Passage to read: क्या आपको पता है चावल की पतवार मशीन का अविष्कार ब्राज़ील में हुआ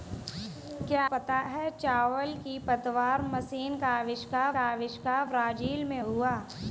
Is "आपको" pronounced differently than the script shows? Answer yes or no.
yes